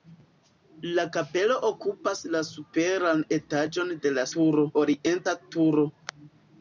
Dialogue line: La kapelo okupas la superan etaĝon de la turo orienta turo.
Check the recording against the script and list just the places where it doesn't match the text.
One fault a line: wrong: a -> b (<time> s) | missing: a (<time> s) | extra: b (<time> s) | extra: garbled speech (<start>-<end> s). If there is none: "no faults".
no faults